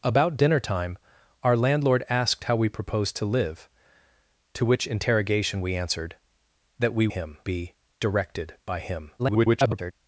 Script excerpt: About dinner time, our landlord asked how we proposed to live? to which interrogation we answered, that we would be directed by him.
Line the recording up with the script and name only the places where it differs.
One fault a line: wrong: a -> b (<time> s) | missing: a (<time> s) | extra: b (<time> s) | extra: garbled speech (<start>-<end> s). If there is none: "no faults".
wrong: would -> him (7.1 s)
extra: garbled speech (9.2-9.9 s)